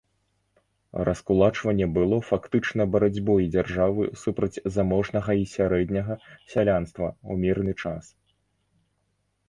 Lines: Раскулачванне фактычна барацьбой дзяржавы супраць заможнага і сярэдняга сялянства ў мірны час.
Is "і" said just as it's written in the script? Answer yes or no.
yes